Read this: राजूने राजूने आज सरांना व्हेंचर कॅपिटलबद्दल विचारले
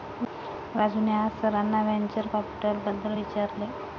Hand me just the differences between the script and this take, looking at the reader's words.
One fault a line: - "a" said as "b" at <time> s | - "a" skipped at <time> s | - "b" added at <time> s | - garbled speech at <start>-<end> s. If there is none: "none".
- "राजूने" skipped at 1.1 s